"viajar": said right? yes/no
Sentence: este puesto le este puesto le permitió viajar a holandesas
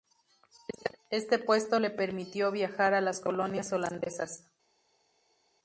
yes